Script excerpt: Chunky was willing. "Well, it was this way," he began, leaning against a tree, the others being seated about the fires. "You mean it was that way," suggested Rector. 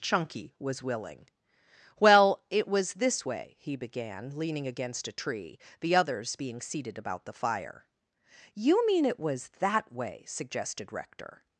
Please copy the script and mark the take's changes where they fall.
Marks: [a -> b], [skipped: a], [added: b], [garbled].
Chunky was willing. "Well, it was this way," he began, leaning against a tree, the others being seated about the [fires. -> fire] "You mean it was that way," suggested Rector.